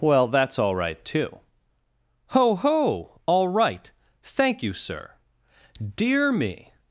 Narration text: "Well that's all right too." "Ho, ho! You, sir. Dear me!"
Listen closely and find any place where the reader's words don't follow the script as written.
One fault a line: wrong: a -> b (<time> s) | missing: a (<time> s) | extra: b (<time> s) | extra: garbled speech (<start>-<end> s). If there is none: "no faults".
extra: All right Thank (3.2 s)